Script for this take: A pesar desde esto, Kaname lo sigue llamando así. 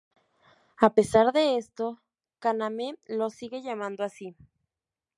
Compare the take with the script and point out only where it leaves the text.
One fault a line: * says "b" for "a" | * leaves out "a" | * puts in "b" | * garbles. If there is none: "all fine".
* says "de" for "desde"